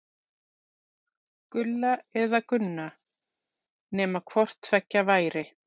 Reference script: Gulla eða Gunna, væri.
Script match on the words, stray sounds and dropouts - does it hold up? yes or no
no